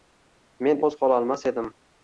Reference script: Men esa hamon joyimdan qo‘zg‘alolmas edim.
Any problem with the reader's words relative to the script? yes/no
yes